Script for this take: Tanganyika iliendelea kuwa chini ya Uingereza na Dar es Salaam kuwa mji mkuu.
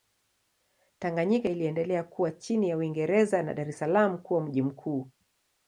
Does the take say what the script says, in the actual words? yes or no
yes